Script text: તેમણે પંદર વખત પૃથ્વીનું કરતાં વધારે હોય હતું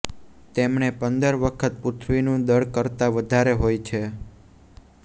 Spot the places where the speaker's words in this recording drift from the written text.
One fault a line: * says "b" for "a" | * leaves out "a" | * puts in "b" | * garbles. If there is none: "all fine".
* puts in "દળ"
* says "છે" for "હતું"